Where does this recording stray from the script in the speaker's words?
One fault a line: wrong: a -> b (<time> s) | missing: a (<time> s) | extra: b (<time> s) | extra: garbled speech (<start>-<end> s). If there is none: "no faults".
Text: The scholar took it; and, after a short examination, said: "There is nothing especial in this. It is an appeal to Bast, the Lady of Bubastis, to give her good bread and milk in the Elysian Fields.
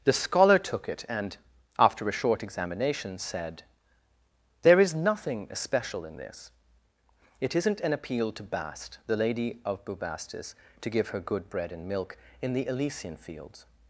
wrong: is -> isn't (7.5 s)